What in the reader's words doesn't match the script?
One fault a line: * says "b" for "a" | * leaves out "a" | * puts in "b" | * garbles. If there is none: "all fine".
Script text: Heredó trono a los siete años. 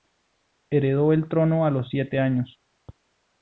* puts in "el"